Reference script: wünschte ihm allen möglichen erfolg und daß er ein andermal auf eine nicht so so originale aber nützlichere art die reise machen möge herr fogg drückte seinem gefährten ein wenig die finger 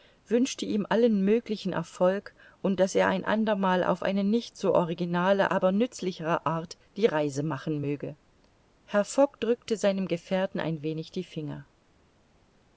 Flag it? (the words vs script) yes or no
yes